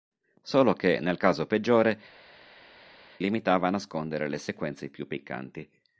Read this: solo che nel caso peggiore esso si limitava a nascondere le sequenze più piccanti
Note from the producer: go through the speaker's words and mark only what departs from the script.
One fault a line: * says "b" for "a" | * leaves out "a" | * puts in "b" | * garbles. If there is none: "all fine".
* leaves out "esso si"